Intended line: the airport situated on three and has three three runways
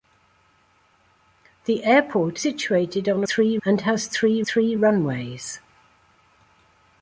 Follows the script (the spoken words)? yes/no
yes